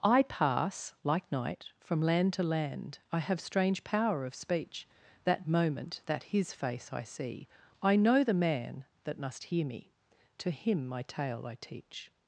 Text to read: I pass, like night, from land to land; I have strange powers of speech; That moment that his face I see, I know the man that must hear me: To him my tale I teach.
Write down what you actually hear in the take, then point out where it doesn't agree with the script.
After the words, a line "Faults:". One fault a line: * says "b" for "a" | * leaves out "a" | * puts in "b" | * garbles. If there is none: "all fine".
I pass, like night, from land to land; I have strange power of speech; That moment that his face I see, I know the man that must hear me: To him my tale I teach.
Faults:
* says "power" for "powers"